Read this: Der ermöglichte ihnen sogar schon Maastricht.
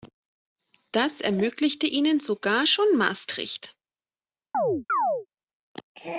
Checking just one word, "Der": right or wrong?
wrong